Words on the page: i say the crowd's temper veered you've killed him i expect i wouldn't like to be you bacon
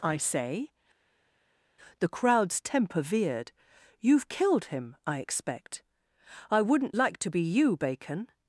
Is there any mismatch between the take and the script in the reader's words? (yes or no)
no